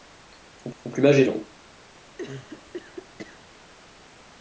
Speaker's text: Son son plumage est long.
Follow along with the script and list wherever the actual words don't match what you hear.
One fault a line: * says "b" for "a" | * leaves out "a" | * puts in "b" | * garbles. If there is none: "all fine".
all fine